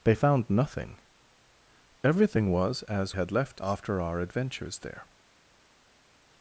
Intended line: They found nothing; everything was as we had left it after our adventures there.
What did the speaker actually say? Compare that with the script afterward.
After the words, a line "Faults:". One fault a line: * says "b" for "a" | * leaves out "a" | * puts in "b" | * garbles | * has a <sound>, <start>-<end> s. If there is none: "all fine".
They found nothing; everything was as had left after our adventures there.
Faults:
* leaves out "we"
* leaves out "it"